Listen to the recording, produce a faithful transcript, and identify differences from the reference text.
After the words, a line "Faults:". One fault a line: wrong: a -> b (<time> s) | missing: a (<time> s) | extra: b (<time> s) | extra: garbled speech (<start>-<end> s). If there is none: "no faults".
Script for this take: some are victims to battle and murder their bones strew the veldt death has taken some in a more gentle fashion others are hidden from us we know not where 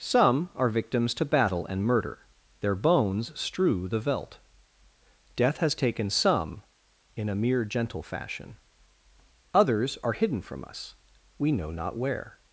some are victims to battle and murder their bones strew the veldt death has taken some in a mere gentle fashion others are hidden from us we know not where
Faults:
wrong: more -> mere (7.3 s)